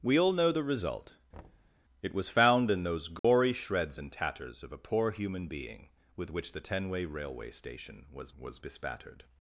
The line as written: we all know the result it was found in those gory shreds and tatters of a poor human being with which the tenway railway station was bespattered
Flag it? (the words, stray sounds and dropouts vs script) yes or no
yes